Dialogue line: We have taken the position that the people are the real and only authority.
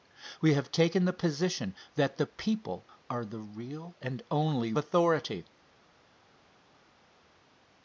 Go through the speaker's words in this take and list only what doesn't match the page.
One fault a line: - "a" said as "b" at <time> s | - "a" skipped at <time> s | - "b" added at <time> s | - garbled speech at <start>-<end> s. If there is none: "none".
none